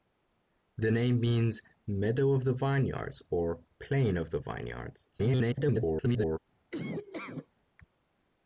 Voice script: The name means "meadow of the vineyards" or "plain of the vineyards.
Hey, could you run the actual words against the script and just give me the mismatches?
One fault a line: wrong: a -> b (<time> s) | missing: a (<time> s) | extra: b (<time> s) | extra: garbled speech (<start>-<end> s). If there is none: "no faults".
extra: garbled speech (5.1-6.4 s)